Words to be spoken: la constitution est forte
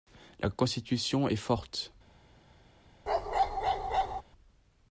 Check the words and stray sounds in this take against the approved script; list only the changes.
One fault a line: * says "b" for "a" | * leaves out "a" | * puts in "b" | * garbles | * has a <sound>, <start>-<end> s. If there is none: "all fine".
* has a bark, 3.1-4.2 s